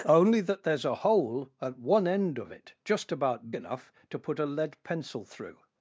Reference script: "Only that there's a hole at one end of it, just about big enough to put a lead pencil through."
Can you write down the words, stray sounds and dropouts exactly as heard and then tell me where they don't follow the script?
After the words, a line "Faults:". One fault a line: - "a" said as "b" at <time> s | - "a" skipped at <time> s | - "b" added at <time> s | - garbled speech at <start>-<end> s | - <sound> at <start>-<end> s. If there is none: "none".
"Only that there's a hole at one end of it, just about enough to put a lead pencil through."
Faults:
- "big" skipped at 3.5 s